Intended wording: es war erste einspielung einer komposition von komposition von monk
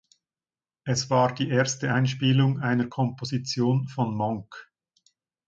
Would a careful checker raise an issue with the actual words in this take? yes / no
yes